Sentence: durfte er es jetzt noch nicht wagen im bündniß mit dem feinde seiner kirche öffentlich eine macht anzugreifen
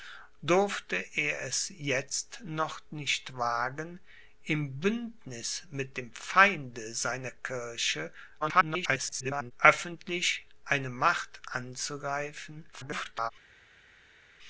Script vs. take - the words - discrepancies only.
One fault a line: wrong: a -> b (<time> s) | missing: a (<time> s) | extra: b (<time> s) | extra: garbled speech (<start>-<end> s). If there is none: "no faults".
extra: garbled speech (8.4-9.5 s)
extra: garbled speech (12.7-13.3 s)